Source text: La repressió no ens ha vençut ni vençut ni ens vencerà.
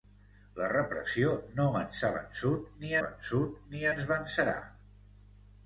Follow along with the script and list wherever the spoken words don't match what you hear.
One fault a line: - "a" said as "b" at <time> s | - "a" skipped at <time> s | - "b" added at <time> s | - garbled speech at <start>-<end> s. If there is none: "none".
none